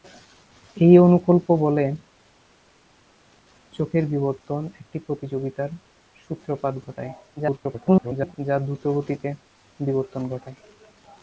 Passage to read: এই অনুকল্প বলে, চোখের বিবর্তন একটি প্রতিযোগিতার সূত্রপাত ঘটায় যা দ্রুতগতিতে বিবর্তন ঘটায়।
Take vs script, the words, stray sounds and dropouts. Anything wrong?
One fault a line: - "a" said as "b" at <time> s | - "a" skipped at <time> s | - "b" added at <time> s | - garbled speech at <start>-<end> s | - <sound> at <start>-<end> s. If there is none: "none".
- garbled speech at 7.4-8.3 s